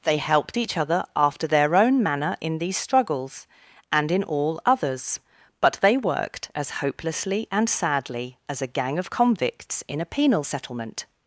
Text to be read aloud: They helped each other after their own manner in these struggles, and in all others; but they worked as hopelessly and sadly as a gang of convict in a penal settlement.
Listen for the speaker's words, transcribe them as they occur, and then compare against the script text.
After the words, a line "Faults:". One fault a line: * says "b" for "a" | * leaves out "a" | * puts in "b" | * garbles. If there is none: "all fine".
They helped each other after their own manner in these struggles, and in all others; but they worked as hopelessly and sadly as a gang of convicts in a penal settlement.
Faults:
* says "convicts" for "convict"